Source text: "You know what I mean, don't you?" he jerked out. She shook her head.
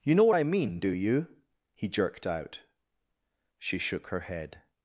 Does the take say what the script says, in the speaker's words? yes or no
no